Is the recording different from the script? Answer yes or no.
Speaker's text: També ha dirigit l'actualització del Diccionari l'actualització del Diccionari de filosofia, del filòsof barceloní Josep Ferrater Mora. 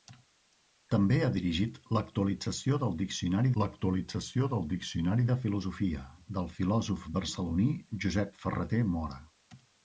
no